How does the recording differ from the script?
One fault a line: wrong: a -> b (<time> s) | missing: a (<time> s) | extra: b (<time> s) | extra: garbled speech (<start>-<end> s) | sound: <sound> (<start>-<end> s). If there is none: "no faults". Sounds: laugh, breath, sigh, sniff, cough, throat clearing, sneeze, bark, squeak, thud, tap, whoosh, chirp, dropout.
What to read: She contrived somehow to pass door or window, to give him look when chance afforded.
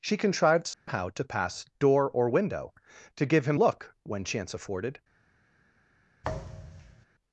sound: dropout (0.7-0.9 s)
sound: thud (6.2-7.1 s)